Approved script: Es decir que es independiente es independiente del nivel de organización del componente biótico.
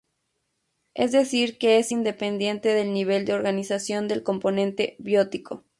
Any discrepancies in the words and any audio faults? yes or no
yes